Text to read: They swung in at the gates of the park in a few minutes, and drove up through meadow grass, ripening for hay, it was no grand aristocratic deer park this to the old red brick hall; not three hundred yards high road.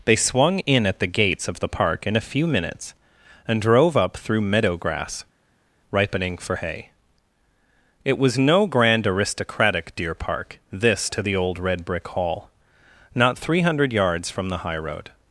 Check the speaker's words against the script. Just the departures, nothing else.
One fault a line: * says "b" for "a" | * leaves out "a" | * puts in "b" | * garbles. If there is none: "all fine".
* puts in "from the"